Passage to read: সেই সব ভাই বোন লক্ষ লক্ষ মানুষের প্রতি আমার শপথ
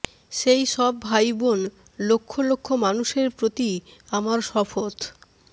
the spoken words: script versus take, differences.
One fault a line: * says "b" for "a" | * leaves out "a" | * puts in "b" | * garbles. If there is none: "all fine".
all fine